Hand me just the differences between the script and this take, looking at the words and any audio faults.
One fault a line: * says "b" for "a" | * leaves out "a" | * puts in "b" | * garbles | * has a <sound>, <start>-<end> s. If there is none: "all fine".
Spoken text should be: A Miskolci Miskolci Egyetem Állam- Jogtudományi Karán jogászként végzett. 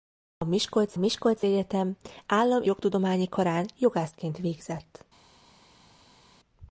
all fine